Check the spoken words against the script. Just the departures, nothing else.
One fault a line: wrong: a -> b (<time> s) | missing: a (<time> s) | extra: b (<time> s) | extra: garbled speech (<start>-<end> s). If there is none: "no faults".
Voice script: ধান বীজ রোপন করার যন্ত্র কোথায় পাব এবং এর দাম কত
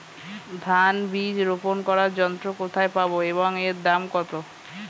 no faults